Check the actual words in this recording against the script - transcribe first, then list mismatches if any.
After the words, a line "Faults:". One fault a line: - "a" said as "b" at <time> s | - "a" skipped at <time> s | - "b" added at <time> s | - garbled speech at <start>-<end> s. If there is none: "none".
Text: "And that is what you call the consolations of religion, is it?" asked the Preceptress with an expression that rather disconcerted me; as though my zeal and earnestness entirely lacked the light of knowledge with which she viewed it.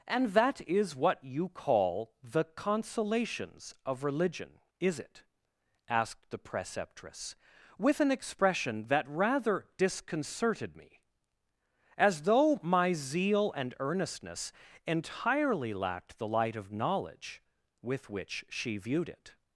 "And that is what you call the consolations of religion, is it?" asked the Preceptress with an expression that rather disconcerted me; as though my zeal and earnestness entirely lacked the light of knowledge with which she viewed it.
Faults:
none